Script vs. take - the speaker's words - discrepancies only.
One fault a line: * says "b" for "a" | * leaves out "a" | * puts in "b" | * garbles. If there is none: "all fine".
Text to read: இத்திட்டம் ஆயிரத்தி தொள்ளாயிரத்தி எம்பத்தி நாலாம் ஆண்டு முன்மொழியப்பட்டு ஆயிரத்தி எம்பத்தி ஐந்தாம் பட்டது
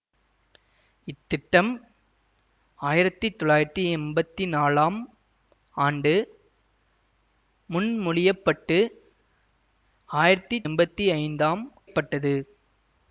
all fine